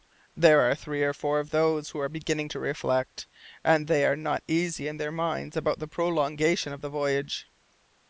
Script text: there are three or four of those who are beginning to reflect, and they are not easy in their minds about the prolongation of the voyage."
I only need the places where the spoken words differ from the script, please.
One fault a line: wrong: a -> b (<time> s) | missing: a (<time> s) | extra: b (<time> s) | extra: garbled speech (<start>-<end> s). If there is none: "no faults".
no faults